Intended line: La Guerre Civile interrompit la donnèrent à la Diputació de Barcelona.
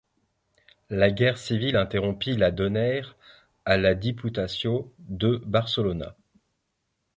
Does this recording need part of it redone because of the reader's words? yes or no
no